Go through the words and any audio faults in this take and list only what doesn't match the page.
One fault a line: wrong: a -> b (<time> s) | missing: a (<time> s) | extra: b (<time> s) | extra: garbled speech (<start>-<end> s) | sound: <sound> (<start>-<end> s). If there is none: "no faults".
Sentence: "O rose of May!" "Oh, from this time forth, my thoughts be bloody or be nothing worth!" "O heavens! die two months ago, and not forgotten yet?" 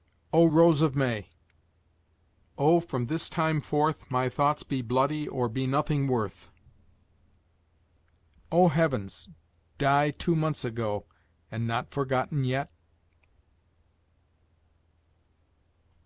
no faults